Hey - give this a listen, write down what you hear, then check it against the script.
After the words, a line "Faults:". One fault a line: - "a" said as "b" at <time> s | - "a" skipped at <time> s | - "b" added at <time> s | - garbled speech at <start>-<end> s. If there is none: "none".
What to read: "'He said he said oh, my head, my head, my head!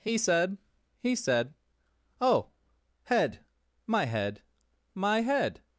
"'He said he said oh, head, my head, my head!
Faults:
- "my" skipped at 2.5 s